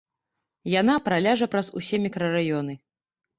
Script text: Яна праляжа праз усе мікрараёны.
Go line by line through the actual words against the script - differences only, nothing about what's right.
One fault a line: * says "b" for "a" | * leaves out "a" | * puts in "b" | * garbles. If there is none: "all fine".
all fine